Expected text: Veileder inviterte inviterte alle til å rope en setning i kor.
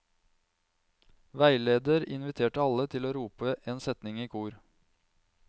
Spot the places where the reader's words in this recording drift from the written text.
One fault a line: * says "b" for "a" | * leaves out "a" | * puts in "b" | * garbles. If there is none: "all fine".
* leaves out "inviterte"